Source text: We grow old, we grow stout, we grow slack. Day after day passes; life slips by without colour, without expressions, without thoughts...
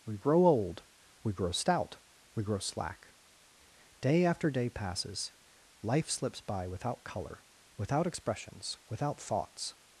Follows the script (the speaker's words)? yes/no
yes